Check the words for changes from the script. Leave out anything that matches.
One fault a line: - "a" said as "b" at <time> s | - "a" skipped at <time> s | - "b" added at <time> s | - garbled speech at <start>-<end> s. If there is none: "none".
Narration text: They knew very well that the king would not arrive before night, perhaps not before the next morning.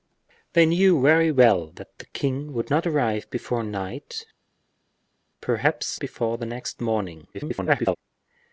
- "not" skipped at 6.0 s
- garbled speech at 7.3-8.0 s